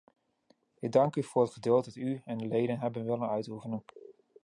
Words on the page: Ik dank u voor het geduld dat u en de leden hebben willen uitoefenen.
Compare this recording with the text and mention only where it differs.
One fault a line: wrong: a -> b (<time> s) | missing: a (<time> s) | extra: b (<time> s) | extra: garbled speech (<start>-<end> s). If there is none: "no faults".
no faults